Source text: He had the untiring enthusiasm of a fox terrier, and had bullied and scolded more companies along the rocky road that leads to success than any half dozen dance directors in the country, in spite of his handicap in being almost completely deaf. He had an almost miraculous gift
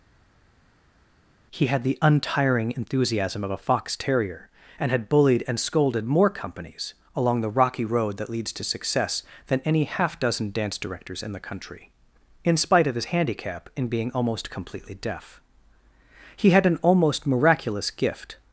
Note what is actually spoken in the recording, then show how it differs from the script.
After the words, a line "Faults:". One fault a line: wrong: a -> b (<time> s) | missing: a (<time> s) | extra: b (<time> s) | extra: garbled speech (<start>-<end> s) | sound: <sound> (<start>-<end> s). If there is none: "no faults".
He had the untiring enthusiasm of a fox terrier, and had bullied and scolded more companies along the rocky road that leads to success than any half dozen dance directors in the country, in spite of his handicap in being almost completely deaf. He had an almost miraculous gift
Faults:
no faults